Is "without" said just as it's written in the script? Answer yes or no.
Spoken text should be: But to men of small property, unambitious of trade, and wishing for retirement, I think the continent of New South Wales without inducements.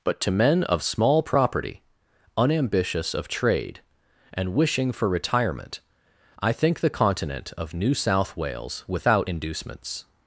yes